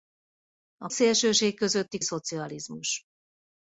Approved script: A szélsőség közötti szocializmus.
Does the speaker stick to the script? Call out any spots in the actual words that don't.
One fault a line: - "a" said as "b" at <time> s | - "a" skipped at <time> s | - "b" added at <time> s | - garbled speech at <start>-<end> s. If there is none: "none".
none